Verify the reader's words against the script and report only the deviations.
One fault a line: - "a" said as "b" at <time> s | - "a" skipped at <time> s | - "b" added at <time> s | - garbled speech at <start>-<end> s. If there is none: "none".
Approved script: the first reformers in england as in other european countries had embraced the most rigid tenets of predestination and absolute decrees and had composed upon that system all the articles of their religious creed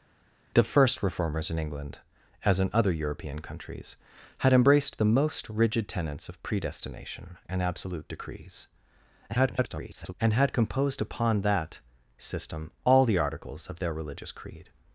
- garbled speech at 9.3-10.1 s